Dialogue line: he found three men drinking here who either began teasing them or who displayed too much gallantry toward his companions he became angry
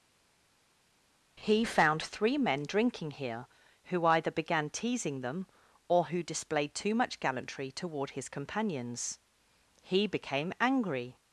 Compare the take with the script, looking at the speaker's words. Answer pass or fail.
pass